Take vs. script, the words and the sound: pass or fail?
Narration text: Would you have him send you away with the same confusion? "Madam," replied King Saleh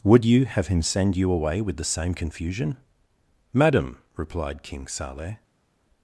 pass